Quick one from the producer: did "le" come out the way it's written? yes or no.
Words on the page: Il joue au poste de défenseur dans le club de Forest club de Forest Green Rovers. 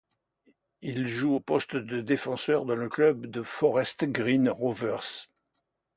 yes